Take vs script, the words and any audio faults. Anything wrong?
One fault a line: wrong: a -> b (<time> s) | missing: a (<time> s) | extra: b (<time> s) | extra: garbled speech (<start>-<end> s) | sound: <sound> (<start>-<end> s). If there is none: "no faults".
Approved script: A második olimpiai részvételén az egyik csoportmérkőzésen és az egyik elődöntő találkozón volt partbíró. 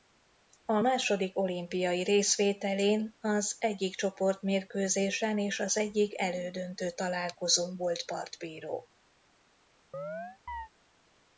sound: chirp (9.9-10.7 s)